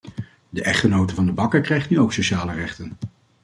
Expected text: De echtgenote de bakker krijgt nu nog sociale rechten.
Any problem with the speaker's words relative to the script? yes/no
yes